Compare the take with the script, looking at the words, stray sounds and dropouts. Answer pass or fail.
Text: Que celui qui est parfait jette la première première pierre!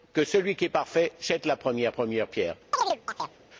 fail